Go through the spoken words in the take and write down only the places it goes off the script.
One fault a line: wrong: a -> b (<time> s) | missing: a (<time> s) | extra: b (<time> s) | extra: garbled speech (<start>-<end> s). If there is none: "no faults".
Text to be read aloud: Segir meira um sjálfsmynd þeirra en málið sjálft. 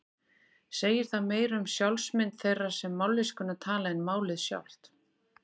extra: það (1.1 s)
extra: sem mállýskuna tala (2.8 s)